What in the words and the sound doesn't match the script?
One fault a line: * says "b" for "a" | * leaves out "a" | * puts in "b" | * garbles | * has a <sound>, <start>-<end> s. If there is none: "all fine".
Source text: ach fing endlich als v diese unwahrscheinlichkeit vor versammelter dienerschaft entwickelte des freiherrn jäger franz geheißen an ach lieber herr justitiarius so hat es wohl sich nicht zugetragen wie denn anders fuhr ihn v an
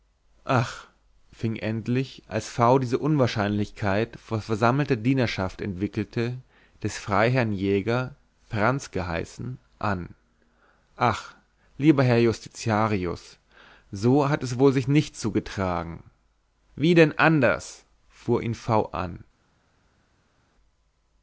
all fine